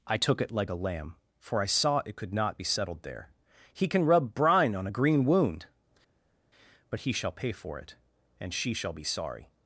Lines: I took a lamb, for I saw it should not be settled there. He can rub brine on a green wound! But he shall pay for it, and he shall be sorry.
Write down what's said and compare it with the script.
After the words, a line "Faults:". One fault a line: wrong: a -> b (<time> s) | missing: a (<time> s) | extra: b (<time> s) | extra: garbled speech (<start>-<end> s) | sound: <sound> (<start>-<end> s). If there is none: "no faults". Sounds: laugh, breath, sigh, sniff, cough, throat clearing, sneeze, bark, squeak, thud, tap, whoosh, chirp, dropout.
I took it like a lamb, for I saw it could not be settled there. He can rub brine on a green wound! But he shall pay for it, and she shall be sorry.
Faults:
extra: it like (0.4 s)
wrong: should -> could (2.2 s)
wrong: he -> she (8.5 s)